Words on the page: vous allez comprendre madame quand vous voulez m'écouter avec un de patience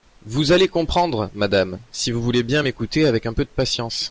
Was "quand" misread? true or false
true